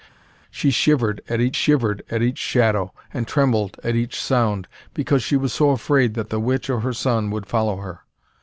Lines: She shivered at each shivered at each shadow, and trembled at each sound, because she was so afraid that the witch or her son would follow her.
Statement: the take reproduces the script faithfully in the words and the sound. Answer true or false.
true